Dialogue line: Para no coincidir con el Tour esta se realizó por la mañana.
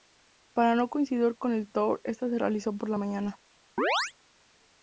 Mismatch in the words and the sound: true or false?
true